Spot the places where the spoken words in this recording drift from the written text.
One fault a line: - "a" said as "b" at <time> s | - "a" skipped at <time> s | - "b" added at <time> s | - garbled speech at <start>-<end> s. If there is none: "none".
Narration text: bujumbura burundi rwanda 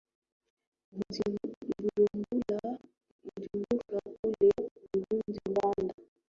- "kule" added at 4.2 s